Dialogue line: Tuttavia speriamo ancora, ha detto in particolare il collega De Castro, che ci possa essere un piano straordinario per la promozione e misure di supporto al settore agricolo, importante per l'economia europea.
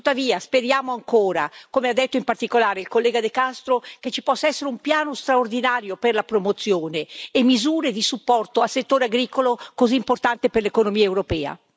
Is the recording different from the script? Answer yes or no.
yes